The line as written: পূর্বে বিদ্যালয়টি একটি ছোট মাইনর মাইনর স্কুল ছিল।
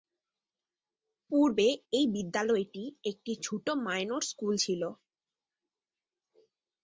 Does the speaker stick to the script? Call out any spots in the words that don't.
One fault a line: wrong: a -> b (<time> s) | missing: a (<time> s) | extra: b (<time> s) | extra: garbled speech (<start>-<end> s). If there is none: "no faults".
extra: এই (1.9 s)
missing: মাইনর (4.2 s)